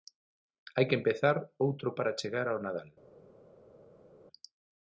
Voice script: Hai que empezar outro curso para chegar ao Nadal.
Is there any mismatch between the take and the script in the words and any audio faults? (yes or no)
yes